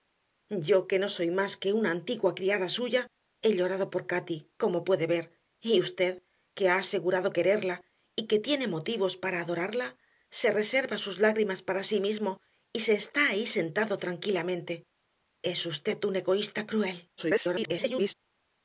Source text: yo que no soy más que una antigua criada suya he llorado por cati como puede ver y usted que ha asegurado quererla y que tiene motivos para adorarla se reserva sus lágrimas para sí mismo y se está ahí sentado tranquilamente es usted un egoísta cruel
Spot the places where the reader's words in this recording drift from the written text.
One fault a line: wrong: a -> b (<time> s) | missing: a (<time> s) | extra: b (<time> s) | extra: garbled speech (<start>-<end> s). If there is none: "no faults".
extra: garbled speech (17.2-18.1 s)